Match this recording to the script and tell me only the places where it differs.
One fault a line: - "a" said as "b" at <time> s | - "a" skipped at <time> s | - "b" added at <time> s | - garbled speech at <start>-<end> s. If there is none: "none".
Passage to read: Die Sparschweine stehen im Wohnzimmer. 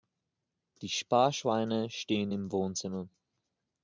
none